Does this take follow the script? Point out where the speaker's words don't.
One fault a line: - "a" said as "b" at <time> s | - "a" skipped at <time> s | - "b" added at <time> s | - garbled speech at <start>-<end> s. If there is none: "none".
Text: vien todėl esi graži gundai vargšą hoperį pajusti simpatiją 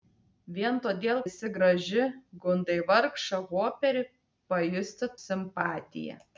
none